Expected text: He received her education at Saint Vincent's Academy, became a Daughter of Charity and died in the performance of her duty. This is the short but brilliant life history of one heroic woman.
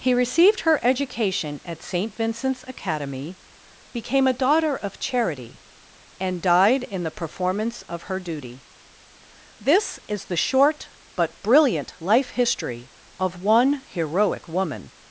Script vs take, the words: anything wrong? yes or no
no